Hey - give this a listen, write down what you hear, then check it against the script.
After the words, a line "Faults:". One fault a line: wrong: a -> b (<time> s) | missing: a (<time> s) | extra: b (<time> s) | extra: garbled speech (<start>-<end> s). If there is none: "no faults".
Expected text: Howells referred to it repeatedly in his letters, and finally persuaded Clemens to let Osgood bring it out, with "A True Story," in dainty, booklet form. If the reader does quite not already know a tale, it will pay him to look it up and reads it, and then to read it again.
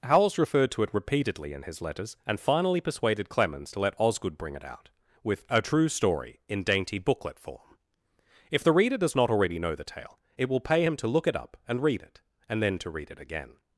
Howells referred to it repeatedly in his letters, and finally persuaded Clemens to let Osgood bring it out, with "A True Story," in dainty, booklet form. If the reader does not already know the tale, it will pay him to look it up and read it, and then to read it again.
Faults:
missing: quite (9.1 s)
wrong: a -> the (9.7 s)
wrong: reads -> read (11.8 s)